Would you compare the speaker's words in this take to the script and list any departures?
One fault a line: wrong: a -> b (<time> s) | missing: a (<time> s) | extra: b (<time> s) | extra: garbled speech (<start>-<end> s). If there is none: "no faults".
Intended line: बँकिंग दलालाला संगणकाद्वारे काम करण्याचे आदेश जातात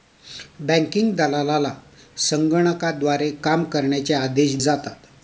no faults